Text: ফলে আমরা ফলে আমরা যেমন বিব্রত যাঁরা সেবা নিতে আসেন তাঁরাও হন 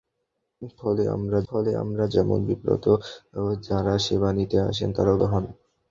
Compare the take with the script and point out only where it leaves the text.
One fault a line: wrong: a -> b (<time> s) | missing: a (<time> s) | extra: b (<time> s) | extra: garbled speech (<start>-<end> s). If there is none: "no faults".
no faults